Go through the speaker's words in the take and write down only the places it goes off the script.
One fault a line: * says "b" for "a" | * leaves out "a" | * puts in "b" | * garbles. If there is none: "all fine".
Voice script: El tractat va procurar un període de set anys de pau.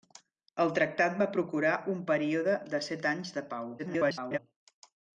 * garbles